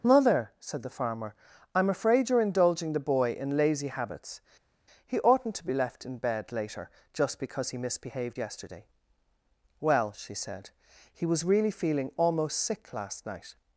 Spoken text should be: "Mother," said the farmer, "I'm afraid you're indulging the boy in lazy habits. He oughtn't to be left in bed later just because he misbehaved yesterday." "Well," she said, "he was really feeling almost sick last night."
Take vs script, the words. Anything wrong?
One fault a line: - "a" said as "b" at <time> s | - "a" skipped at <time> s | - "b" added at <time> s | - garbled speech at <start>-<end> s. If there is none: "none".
none